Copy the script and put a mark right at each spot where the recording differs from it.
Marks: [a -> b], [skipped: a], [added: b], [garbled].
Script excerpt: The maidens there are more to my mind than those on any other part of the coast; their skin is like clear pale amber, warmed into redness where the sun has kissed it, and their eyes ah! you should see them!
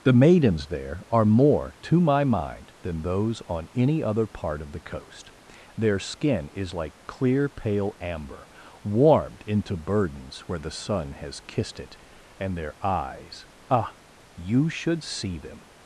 The maidens there are more to my mind than those on any other part of the coast; their skin is like clear pale amber, warmed into [redness -> burdens] where the sun has kissed it, and their eyes ah! you should see them!